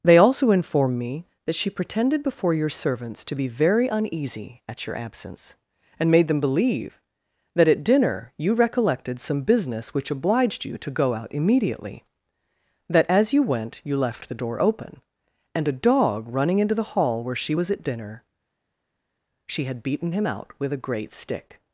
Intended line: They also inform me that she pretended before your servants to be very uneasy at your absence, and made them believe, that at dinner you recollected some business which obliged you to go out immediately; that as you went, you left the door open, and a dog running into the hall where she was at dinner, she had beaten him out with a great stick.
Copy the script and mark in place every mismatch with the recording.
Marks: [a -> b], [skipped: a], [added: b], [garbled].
They also inform me that she pretended before your servants to be very uneasy at your absence, and made them believe, that at dinner you recollected some business which obliged you to go out immediately; that as you went, you left the door open, and a dog running into the hall where she was at dinner, she had beaten him out with a great stick.